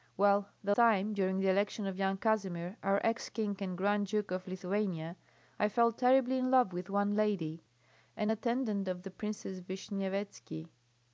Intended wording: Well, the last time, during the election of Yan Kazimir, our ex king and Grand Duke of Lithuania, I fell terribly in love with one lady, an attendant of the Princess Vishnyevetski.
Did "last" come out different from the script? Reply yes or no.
yes